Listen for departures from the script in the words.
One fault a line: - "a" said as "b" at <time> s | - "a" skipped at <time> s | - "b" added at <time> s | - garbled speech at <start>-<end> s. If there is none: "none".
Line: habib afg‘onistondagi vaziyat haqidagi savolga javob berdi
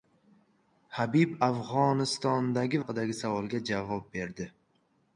- "vaziyat" skipped at 2.8 s